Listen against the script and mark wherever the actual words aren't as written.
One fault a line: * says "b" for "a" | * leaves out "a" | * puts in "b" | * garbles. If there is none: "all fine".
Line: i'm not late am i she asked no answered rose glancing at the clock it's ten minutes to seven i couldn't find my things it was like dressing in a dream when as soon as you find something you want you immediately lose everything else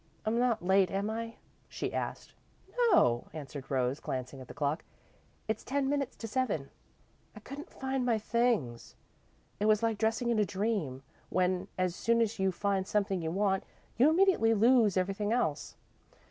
all fine